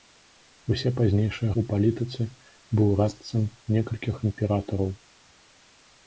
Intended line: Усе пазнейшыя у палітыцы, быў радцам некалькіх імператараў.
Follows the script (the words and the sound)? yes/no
yes